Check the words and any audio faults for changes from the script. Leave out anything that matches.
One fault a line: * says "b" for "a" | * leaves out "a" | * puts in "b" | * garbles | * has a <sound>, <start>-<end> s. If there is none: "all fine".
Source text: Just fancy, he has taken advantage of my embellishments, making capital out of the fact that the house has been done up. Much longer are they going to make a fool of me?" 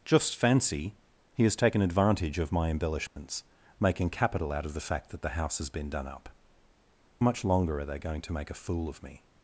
* has a dropout, 3.1-3.2 s